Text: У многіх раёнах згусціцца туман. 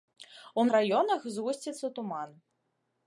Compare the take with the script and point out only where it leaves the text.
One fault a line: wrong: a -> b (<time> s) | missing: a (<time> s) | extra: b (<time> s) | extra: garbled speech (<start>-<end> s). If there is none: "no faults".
missing: многіх (0.6 s)